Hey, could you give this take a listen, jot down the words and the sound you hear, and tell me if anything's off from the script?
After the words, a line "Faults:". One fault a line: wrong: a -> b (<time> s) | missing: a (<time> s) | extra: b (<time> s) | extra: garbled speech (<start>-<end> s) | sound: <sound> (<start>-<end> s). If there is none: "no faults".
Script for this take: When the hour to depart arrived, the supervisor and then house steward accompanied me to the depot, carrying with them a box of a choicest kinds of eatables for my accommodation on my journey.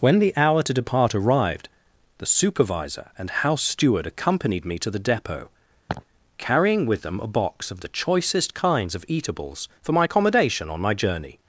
When the hour to depart arrived, the supervisor and house steward accompanied me to the depot, carrying with them a box of the choicest kinds of eatables for my accommodation on my journey.
Faults:
missing: then (3.3 s)
sound: laugh (5.9-6.0 s)
wrong: a -> the (7.8 s)